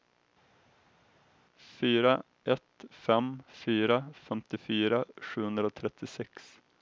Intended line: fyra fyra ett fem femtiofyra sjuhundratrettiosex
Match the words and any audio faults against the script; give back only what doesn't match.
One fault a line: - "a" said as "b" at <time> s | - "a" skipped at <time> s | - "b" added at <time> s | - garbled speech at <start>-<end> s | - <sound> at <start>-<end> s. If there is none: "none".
- "fyra" skipped at 2.2 s
- "fyra" added at 3.5 s